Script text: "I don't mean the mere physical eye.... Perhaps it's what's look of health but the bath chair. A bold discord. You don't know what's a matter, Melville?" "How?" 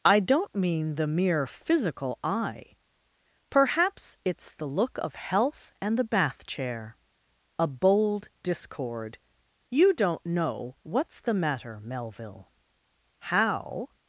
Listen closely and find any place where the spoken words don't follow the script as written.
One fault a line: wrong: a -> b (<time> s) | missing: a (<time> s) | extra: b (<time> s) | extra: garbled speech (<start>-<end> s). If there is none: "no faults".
wrong: what's -> the (4.5 s)
wrong: but -> and (5.8 s)
wrong: a -> the (11.2 s)